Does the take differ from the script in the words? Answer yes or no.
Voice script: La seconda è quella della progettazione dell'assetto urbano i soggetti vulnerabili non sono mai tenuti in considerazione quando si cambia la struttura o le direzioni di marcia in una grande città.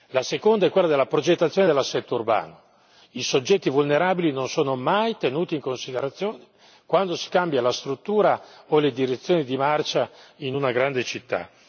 no